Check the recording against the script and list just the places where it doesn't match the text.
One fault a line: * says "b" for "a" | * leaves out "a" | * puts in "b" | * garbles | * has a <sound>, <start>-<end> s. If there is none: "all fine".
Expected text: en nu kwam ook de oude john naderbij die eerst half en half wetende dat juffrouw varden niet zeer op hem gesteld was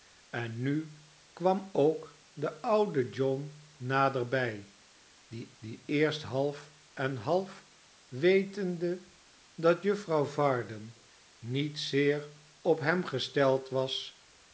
* puts in "die"